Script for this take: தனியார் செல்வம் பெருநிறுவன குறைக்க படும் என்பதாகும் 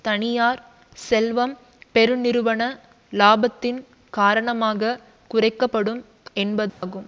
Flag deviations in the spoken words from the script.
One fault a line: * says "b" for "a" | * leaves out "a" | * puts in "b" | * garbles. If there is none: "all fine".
* puts in "இலாபத்தின் காரணமாக"